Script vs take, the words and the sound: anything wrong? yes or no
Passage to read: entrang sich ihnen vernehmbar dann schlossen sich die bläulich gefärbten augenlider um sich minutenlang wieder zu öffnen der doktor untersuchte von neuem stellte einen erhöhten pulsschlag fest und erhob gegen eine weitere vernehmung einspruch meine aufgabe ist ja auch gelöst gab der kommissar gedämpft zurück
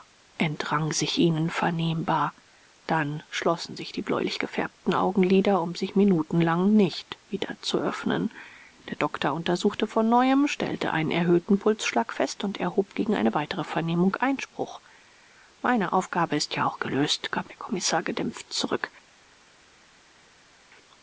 yes